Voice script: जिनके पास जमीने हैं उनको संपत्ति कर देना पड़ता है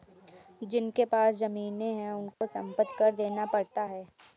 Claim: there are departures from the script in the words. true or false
false